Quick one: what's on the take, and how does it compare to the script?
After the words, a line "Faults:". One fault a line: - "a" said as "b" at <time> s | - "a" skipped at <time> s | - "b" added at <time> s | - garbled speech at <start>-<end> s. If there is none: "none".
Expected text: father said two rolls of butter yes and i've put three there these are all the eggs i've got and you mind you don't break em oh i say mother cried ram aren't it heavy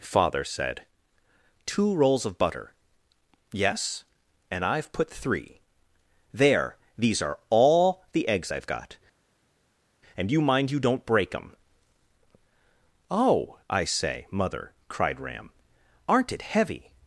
father said two rolls of butter yes and i've put three there these are all the eggs i've got and you mind you don't break em oh i say mother cried ram aren't it heavy
Faults:
none